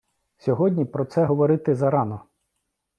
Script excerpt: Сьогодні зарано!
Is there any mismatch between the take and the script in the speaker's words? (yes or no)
yes